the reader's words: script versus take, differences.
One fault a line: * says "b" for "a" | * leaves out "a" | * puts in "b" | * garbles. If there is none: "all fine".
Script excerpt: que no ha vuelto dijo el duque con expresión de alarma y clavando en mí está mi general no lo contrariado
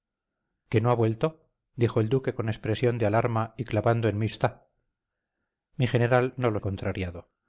all fine